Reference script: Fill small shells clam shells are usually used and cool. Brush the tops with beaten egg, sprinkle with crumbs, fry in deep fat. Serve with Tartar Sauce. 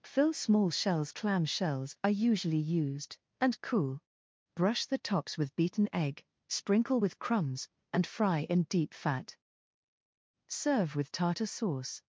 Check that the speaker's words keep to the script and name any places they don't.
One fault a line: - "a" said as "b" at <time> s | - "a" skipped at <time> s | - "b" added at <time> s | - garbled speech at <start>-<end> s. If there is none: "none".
- "and" added at 7.9 s